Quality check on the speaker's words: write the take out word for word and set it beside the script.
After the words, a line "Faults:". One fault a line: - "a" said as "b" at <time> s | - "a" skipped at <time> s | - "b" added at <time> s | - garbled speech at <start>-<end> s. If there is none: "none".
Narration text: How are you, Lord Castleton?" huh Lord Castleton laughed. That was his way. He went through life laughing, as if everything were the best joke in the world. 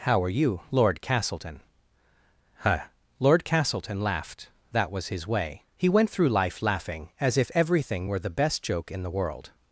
How are you, Lord Castleton?" huh Lord Castleton laughed. That was his way. He went through life laughing, as if everything were the best joke in the world.
Faults:
none